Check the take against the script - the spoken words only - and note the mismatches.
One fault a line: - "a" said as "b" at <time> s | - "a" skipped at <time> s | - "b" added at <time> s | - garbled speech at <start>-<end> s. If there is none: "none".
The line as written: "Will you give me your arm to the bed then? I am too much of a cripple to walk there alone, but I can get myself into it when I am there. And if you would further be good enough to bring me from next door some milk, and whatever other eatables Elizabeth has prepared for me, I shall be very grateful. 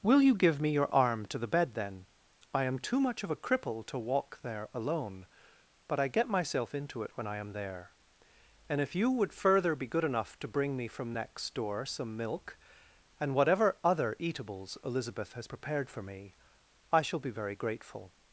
- "can" skipped at 6.1 s